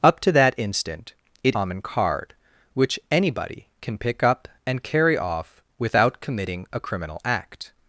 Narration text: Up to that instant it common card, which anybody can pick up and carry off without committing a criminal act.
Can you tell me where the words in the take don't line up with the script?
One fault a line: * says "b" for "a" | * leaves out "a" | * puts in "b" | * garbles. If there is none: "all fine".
all fine